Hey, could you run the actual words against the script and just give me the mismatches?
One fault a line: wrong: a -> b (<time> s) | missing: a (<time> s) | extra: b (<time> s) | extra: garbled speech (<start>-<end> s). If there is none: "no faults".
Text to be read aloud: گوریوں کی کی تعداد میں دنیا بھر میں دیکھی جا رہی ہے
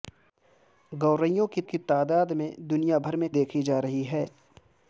no faults